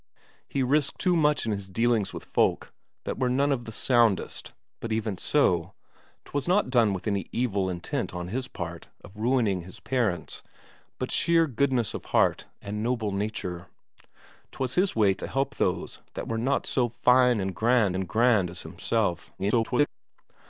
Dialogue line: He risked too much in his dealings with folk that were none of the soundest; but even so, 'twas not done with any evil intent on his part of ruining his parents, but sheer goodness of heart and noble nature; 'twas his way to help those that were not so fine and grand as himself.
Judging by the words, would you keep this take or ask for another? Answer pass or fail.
fail